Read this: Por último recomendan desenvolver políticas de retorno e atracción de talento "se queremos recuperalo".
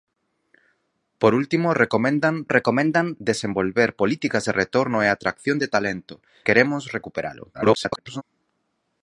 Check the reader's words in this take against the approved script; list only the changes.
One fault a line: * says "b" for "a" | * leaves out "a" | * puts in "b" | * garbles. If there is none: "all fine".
* puts in "recomendan"
* leaves out "se"
* garbles